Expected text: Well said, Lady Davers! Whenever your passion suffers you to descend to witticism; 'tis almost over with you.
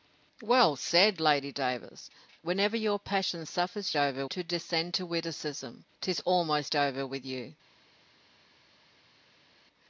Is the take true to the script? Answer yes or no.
no